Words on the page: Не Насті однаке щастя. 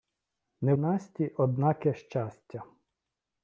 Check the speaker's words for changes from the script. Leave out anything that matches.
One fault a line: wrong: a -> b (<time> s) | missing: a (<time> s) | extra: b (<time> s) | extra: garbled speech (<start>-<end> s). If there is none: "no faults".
no faults